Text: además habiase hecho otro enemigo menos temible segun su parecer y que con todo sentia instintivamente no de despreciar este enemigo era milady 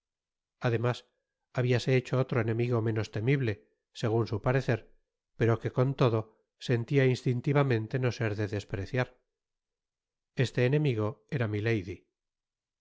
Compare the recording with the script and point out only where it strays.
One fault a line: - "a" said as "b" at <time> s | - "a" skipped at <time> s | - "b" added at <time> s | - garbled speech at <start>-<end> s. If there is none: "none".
- "y" said as "pero" at 5.4 s
- "ser" added at 8.1 s